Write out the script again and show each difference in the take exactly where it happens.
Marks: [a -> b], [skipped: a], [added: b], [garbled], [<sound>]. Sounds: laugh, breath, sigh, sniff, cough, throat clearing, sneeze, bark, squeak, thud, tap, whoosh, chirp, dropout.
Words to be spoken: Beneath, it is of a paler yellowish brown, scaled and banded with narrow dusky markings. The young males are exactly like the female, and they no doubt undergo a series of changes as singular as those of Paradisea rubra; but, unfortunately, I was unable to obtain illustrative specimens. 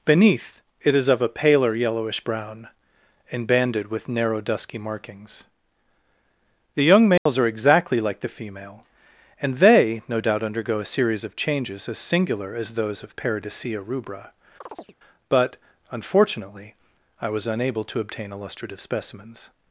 Beneath, it is of a paler yellowish brown, [skipped: scaled] and banded with narrow dusky markings. The young males [dropout] are exactly like the female, and they no doubt undergo a series of changes as singular as those of Paradisea rubra; [chirp] but, unfortunately, I was unable to obtain illustrative specimens.